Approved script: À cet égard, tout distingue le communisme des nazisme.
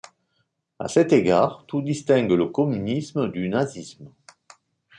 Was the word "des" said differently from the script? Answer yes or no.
yes